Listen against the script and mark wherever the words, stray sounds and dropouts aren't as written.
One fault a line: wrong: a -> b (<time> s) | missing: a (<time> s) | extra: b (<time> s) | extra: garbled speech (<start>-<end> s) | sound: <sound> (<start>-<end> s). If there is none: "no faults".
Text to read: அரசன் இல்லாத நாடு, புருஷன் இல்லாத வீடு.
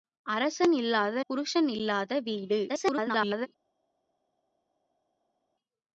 missing: நாடு (1.2 s)
extra: garbled speech (2.7-3.5 s)